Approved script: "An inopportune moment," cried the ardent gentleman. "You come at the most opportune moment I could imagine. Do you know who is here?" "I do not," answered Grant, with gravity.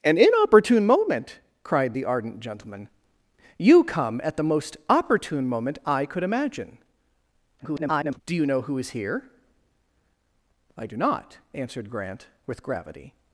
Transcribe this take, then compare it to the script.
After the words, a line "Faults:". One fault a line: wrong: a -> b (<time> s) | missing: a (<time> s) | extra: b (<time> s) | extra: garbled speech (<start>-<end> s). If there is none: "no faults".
"An inopportune moment," cried the ardent gentleman. "You come at the most opportune moment I could imagine. [garbled] Do you know who is here?" "I do not," answered Grant, with gravity.
Faults:
extra: garbled speech (7.6-8.2 s)